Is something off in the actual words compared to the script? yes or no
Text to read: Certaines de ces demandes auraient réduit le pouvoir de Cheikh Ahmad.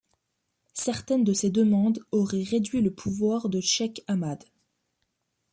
no